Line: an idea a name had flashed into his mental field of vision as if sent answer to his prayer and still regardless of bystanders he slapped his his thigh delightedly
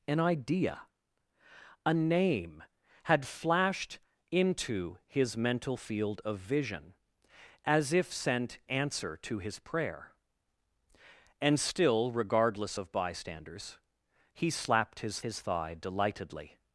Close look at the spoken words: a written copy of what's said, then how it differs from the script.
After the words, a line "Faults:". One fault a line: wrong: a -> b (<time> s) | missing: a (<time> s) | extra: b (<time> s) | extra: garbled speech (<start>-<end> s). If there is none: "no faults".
an idea a name had flashed into his mental field of vision as if sent answer to his prayer and still regardless of bystanders he slapped his his thigh delightedly
Faults:
no faults